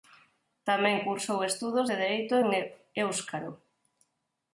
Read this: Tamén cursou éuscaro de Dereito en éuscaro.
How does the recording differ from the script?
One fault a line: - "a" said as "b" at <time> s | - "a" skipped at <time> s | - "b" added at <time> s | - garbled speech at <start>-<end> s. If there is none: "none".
- "éuscaro" said as "estudos" at 1.5 s